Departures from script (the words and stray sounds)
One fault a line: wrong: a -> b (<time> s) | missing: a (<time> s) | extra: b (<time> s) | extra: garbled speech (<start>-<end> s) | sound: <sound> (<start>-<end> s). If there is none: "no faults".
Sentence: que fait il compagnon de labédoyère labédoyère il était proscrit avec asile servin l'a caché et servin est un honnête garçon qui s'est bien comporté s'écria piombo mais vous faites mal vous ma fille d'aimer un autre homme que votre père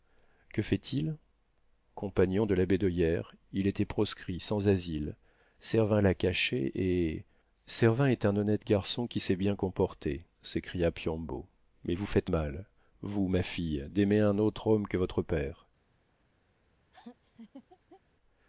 missing: labédoyère (3.4 s)
wrong: avec -> sans (4.4 s)
sound: laugh (16.9-18.0 s)